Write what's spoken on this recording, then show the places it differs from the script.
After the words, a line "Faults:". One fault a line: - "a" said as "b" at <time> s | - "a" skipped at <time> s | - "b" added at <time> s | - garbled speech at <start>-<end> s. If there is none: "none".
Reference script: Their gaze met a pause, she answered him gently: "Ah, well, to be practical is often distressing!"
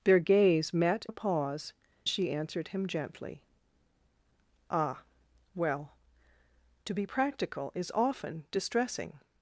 Their gaze met a pause, she answered him gently: "Ah, well, to be practical is often distressing!"
Faults:
none